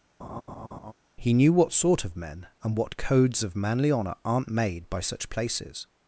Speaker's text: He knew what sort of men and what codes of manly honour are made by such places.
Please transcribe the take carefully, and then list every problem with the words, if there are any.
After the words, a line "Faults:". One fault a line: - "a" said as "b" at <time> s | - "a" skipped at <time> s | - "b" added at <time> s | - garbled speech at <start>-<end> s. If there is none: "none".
He knew what sort of men and what codes of manly honour aren't made by such places.
Faults:
- "are" said as "aren't" at 4.2 s